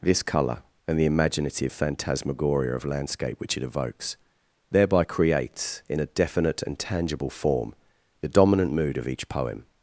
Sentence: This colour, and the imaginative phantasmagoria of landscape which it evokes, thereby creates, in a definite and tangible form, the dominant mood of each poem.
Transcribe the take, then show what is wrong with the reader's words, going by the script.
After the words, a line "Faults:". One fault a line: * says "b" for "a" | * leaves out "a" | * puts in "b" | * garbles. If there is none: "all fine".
This colour, and the imaginative phantasmagoria of landscape which it evokes, thereby creates, in a definite and tangible form, the dominant mood of each poem.
Faults:
all fine